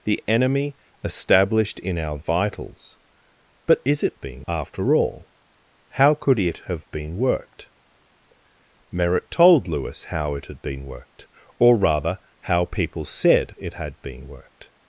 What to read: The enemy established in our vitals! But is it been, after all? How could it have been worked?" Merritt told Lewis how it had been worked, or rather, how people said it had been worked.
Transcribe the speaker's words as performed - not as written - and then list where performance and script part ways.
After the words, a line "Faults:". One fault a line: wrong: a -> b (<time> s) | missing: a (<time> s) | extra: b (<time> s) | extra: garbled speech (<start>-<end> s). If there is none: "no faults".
The enemy established in our vitals! But is it been, after all? How could it have been worked?" Merritt told Lewis how it had been worked, or rather, how people said it had been worked.
Faults:
no faults